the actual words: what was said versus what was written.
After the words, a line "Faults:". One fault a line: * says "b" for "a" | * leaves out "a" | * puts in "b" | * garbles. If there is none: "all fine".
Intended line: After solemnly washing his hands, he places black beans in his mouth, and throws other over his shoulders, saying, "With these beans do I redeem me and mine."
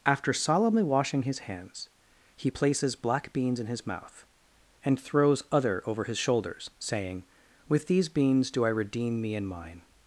After solemnly washing his hands, he places black beans in his mouth, and throws other over his shoulders, saying, "With these beans do I redeem me and mine."
Faults:
all fine